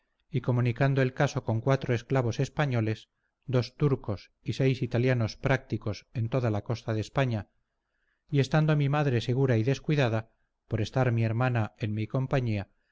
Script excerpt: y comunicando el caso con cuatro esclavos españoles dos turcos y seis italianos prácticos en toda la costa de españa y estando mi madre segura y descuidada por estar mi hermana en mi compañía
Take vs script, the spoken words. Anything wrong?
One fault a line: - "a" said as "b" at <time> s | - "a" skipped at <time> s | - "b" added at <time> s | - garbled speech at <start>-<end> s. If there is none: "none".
none